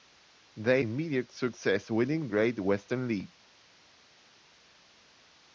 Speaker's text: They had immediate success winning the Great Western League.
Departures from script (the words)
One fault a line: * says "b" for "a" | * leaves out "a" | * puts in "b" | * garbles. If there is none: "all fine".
* leaves out "had"
* leaves out "the"